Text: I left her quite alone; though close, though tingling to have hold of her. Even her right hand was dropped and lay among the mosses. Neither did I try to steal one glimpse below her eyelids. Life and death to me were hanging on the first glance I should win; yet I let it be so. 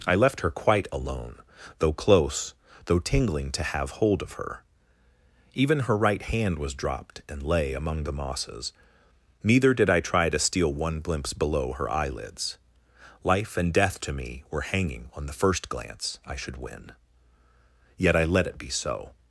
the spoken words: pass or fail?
pass